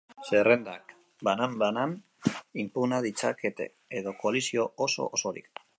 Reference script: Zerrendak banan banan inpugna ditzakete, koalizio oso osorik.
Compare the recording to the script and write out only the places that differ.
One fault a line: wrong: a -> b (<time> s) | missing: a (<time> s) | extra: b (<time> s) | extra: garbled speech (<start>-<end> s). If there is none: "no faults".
extra: edo (4.0 s)